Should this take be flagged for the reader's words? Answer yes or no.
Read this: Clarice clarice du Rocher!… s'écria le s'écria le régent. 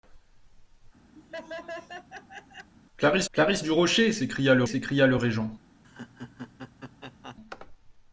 no